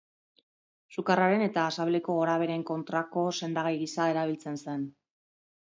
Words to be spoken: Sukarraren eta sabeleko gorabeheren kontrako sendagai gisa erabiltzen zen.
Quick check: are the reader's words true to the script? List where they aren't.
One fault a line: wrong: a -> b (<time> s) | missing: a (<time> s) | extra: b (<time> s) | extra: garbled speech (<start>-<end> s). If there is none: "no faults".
no faults